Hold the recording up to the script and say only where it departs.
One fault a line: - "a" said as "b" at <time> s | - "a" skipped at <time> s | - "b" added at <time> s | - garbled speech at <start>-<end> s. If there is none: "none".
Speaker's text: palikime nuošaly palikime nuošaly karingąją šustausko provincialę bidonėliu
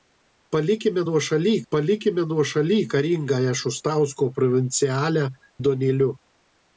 none